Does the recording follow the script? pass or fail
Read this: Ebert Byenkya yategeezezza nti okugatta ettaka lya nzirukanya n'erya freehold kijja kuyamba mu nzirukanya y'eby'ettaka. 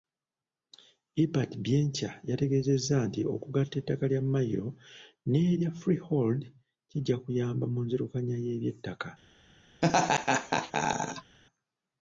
fail